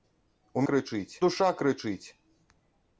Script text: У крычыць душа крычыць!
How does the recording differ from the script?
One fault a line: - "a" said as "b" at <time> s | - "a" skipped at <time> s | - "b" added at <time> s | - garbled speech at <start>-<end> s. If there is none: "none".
none